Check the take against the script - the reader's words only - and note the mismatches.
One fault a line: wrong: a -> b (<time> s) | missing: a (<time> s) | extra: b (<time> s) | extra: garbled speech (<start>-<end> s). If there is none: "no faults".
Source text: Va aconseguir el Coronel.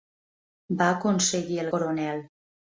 no faults